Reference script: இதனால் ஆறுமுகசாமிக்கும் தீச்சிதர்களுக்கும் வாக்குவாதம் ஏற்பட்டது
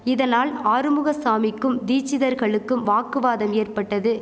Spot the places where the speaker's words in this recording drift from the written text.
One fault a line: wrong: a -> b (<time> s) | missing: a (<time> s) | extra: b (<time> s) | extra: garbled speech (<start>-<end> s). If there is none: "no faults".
no faults